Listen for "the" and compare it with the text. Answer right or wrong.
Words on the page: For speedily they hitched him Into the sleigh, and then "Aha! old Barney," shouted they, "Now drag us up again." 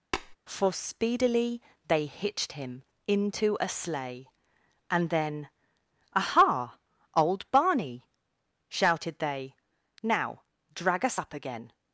wrong